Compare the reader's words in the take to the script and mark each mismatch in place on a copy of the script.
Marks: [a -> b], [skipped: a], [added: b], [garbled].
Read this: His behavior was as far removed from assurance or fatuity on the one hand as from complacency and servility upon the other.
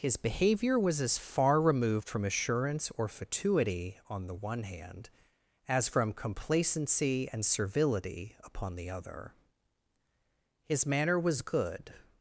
His behavior was as far removed from assurance or fatuity on the one hand as from complacency and servility upon the other. [added: His manner was good]